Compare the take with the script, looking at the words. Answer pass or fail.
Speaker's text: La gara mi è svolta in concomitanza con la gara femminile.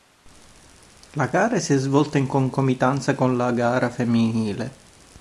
fail